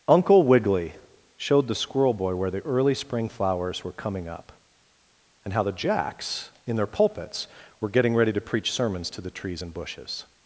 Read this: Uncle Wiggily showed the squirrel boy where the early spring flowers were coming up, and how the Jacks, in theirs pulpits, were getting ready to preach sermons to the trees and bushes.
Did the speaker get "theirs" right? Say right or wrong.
wrong